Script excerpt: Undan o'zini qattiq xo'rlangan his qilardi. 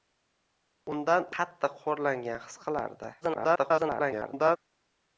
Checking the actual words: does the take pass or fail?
fail